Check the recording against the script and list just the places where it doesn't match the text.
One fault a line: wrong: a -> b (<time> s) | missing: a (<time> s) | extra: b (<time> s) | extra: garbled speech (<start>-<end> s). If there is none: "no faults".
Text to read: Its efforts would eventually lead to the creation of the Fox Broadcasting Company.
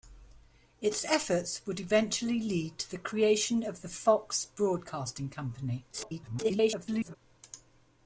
extra: garbled speech (5.9-7.2 s)